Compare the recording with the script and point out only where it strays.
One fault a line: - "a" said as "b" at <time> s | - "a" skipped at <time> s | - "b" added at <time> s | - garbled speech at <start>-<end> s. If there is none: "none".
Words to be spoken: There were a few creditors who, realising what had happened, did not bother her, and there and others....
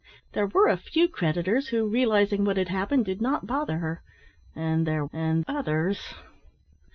none